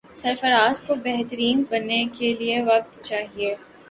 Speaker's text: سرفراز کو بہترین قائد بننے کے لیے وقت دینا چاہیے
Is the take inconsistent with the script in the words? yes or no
yes